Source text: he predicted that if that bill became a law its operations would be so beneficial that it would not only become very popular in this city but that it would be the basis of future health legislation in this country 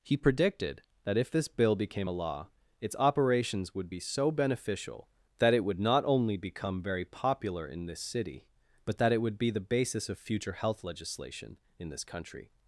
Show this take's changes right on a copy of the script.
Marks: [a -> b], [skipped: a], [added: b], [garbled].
he predicted that if [that -> this] bill became a law its operations would be so beneficial that it would not only become very popular in this city but that it would be the basis of future health legislation in this country